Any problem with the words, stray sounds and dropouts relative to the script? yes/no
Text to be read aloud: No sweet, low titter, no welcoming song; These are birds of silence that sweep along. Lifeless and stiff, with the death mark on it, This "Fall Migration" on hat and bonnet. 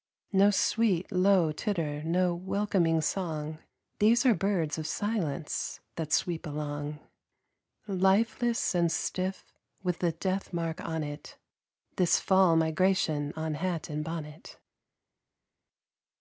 no